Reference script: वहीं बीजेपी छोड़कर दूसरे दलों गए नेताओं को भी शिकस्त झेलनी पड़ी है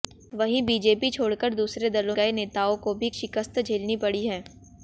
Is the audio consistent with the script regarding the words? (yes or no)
yes